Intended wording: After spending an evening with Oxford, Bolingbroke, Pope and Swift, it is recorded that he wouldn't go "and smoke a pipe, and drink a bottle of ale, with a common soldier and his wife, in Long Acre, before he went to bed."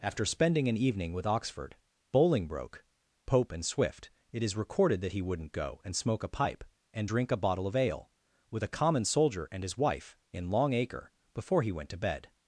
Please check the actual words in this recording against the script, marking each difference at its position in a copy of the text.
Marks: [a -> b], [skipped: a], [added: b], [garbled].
After spending an evening with Oxford, Bolingbroke, Pope and Swift, it is recorded that he wouldn't go "and smoke a pipe, and drink a bottle of ale, with a common soldier and his wife, in Long Acre, before he went to bed."